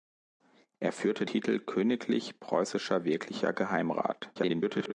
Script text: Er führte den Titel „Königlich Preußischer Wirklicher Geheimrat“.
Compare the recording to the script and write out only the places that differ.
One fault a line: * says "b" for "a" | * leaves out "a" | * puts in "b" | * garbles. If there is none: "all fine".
* leaves out "den"
* garbles